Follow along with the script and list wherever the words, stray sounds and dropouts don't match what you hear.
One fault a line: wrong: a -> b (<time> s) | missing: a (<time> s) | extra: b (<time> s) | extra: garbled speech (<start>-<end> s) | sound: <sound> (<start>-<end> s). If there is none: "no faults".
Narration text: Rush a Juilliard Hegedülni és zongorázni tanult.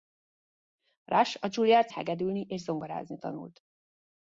no faults